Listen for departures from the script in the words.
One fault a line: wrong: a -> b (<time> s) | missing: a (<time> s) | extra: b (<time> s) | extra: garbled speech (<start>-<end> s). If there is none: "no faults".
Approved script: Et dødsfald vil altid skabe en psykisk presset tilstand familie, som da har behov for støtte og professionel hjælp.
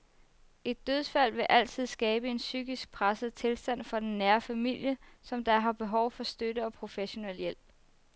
extra: for den nære (3.8 s)